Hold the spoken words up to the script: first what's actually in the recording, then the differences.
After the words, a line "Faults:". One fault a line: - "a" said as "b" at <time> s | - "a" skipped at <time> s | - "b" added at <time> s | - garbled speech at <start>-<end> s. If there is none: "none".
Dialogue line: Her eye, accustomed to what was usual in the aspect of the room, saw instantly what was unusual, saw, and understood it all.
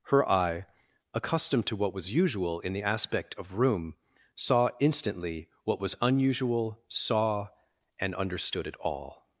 Her eye, accustomed to what was usual in the aspect of room, saw instantly what was unusual, saw, and understood it all.
Faults:
- "the" skipped at 3.6 s